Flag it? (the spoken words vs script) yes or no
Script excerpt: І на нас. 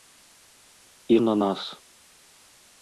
no